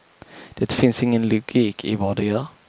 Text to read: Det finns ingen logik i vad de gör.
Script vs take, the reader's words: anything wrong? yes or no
no